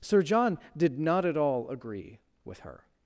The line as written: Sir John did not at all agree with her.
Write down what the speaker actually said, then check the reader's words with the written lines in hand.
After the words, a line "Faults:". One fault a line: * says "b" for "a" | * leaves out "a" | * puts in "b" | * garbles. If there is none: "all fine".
Sir John did not at all agree with her.
Faults:
all fine